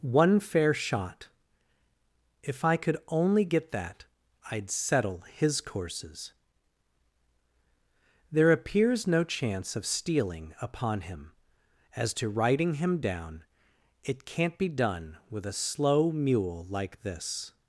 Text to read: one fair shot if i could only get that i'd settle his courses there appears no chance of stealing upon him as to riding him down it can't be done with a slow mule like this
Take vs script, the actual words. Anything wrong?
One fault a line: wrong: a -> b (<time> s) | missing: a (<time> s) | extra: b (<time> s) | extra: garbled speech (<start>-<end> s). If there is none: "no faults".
no faults